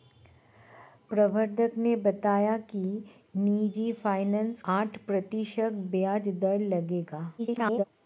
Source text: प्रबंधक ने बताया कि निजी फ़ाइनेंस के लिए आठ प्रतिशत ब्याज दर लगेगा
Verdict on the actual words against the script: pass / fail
fail